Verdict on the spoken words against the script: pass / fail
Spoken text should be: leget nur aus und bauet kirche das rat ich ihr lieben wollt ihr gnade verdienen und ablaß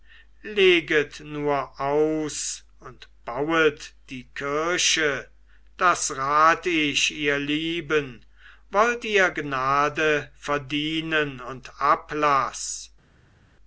fail